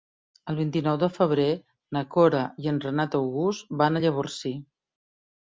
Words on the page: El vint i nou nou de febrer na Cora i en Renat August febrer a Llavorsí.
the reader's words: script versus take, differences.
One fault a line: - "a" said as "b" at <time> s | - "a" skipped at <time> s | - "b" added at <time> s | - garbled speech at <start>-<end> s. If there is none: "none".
- "nou" skipped at 1.0 s
- "febrer" said as "van" at 3.8 s